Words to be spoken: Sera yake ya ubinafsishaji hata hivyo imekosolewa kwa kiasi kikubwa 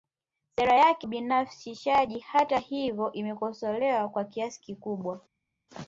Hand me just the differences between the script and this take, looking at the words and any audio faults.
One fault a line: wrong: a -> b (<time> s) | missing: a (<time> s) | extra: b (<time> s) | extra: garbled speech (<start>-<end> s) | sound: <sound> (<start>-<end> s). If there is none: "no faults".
missing: ya (1.1 s)